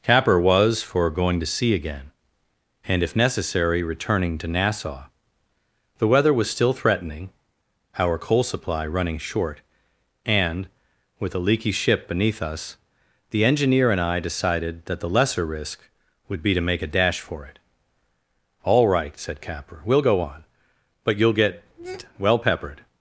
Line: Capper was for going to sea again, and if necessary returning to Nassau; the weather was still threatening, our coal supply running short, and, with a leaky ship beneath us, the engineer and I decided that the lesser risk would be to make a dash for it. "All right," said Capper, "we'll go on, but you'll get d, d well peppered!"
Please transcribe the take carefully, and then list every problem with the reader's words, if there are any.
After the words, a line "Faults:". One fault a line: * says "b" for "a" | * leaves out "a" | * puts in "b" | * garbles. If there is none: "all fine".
Capper was for going to sea again, and if necessary returning to Nassau; the weather was still threatening, our coal supply running short, and, with a leaky ship beneath us, the engineer and I decided that the lesser risk would be to make a dash for it. "All right," said Capper, "we'll go on, but you'll get well peppered!"
Faults:
* leaves out "d d"